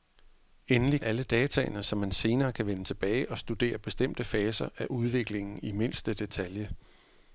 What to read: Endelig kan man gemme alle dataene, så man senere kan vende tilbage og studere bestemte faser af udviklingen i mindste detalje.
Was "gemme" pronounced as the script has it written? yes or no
no